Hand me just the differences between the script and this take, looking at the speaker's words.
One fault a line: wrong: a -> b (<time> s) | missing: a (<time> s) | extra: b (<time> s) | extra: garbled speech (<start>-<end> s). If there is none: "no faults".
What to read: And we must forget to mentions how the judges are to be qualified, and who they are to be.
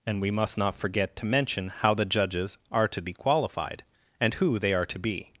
extra: not (0.6 s)
wrong: mentions -> mention (1.2 s)